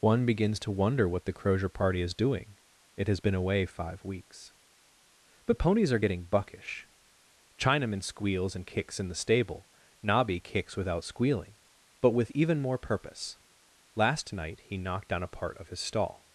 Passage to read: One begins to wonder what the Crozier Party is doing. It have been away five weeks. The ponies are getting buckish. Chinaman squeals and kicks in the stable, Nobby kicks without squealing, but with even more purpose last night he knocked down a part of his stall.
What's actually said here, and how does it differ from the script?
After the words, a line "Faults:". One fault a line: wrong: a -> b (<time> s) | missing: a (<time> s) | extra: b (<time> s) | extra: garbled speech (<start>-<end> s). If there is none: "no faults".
One begins to wonder what the Crozier Party is doing. It has been away five weeks. The ponies are getting buckish. Chinaman squeals and kicks in the stable, Nobby kicks without squealing, but with even more purpose last night he knocked down a part of his stall.
Faults:
wrong: have -> has (3.1 s)